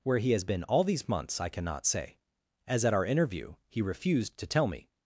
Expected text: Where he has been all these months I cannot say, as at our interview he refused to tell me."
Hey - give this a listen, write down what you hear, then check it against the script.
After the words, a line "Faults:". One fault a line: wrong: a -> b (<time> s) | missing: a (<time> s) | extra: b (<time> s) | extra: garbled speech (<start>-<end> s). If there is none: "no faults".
Where he has been all these months I cannot say, as at our interview he refused to tell me."
Faults:
no faults